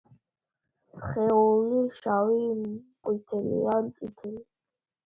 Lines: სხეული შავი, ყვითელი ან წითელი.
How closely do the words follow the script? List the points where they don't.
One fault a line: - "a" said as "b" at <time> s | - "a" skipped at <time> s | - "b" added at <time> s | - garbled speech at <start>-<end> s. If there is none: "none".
none